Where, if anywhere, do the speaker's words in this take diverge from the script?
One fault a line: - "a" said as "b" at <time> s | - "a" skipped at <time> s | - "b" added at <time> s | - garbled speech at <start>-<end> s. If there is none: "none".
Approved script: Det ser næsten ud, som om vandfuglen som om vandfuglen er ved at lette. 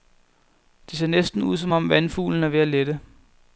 - "som om vandfuglen" skipped at 2.4 s